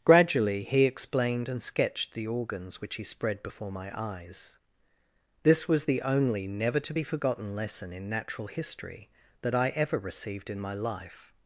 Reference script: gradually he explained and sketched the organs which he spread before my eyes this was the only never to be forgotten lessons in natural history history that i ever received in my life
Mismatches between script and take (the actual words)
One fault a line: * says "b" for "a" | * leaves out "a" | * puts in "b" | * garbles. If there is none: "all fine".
* says "lesson" for "lessons"
* leaves out "history"